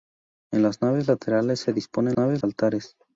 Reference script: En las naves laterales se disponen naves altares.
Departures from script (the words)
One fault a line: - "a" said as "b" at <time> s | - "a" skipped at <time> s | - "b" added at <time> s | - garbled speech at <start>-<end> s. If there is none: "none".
none